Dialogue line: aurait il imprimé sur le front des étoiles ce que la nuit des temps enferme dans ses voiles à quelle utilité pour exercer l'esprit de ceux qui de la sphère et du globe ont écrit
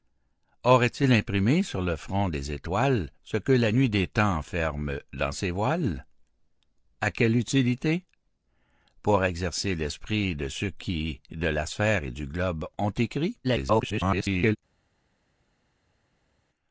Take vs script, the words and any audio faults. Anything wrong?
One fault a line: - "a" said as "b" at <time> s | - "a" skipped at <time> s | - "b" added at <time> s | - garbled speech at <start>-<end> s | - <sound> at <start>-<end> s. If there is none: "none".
- garbled speech at 13.4-14.6 s